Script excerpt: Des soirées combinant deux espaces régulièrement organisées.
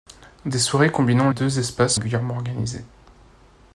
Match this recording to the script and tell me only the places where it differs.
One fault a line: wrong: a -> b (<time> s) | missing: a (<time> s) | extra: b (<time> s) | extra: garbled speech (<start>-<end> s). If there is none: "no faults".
no faults